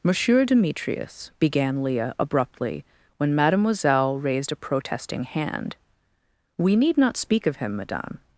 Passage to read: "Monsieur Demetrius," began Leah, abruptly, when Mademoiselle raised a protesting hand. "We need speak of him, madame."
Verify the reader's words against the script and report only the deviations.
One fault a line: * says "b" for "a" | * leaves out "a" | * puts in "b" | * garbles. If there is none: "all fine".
* puts in "not"